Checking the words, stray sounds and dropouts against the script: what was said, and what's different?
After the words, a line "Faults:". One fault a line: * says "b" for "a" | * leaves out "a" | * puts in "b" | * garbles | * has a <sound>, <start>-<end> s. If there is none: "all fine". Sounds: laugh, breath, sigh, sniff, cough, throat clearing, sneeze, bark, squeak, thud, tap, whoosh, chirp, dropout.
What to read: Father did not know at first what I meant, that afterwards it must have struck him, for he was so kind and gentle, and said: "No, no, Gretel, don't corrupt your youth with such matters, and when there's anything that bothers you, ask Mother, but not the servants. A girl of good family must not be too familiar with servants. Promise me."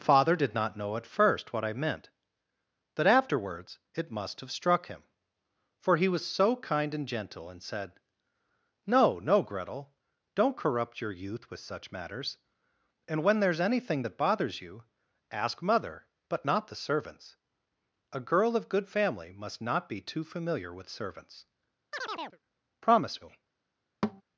Father did not know at first what I meant, that afterwards it must have struck him, for he was so kind and gentle, and said: "No, no, Gretel, don't corrupt your youth with such matters, and when there's anything that bothers you, ask Mother, but not the servants. A girl of good family must not be too familiar with servants. Promise me."
Faults:
* has a chirp, 21.9-22.4 s
* has a thud, 24.0-24.2 s